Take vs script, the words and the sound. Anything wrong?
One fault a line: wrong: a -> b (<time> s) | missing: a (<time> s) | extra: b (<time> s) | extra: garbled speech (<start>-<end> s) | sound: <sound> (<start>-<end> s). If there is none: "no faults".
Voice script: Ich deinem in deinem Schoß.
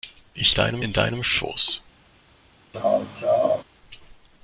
sound: laugh (2.7-3.6 s)